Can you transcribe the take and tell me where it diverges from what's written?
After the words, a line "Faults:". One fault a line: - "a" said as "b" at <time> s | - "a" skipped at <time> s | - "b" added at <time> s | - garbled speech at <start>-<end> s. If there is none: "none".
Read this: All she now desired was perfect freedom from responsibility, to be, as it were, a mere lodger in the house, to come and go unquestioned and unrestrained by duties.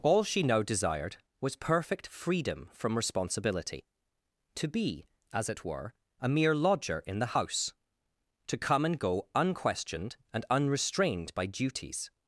All she now desired was perfect freedom from responsibility, to be, as it were, a mere lodger in the house, to come and go unquestioned and unrestrained by duties.
Faults:
none